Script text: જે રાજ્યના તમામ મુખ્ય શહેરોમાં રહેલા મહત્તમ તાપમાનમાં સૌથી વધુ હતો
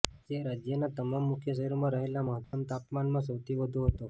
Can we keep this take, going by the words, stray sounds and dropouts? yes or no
no